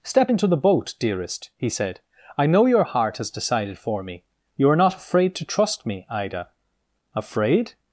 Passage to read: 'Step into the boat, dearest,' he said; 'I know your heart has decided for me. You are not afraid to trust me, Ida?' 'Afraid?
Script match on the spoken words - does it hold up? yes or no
yes